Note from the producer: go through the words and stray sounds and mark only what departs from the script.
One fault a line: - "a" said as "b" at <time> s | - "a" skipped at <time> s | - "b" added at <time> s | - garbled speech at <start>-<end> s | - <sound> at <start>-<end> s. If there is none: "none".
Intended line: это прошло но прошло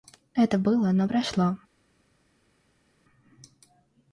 - "прошло" said as "было" at 0.6 s